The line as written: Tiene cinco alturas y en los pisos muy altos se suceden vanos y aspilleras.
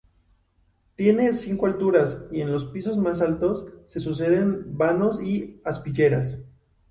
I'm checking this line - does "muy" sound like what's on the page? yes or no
no